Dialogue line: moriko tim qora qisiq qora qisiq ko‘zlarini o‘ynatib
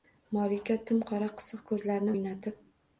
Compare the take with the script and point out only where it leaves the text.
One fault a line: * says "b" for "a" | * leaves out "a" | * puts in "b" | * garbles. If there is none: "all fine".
* leaves out "qora qisiq"